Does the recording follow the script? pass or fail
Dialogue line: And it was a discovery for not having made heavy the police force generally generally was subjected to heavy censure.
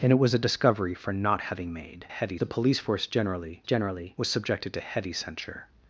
pass